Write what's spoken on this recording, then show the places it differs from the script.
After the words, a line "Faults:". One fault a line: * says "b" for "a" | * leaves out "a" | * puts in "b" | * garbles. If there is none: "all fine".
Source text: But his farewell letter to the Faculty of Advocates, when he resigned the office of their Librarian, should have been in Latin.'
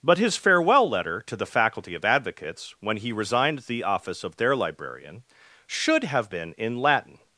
But his farewell letter to the Faculty of Advocates, when he resigned the office of their Librarian, should have been in Latin.'
Faults:
all fine